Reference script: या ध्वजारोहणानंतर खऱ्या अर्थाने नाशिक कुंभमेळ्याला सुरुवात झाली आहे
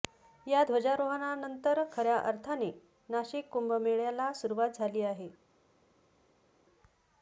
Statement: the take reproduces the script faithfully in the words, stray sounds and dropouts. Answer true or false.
true